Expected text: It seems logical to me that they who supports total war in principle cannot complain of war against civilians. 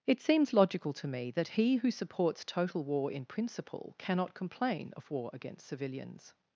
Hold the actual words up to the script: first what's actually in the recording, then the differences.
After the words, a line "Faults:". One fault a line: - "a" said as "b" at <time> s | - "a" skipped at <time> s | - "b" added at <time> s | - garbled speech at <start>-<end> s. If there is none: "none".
It seems logical to me that he who supports total war in principle cannot complain of war against civilians.
Faults:
- "they" said as "he" at 1.5 s